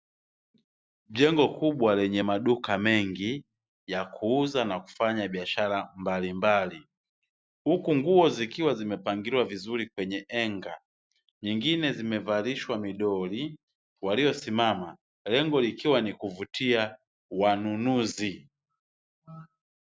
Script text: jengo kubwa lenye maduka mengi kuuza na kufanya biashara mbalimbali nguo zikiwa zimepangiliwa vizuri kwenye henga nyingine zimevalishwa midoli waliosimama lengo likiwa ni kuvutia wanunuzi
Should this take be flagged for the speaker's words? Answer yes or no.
yes